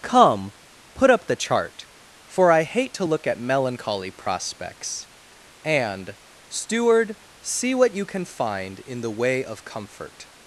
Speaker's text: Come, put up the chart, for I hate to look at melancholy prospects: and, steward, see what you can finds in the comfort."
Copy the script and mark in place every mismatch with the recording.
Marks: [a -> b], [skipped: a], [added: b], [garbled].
Come, put up the chart, for I hate to look at melancholy prospects: and, steward, see what you can [finds -> find] in the [added: way of] comfort."